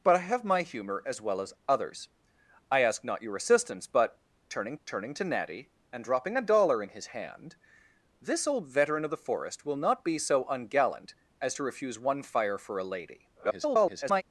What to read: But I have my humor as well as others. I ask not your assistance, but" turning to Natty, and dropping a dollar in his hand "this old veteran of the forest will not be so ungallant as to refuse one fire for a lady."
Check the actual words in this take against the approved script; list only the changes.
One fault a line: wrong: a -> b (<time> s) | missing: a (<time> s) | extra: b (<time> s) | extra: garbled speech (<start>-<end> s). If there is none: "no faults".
extra: turning (4.9 s)
extra: garbled speech (13.3-14.2 s)